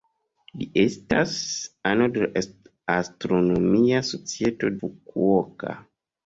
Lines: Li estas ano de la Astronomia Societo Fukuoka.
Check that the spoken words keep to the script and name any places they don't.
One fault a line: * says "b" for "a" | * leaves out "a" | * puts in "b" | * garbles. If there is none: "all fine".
all fine